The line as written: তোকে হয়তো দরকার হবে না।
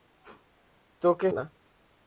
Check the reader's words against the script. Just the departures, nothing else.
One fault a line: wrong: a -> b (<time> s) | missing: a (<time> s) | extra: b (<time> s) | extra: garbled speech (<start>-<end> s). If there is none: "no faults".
missing: হয়তো দরকার হবে (1.3 s)